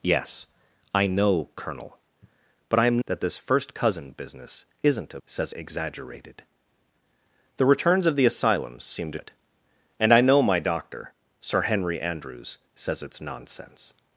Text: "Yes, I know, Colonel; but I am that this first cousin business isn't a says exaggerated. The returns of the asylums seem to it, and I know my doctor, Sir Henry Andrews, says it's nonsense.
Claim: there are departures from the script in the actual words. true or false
false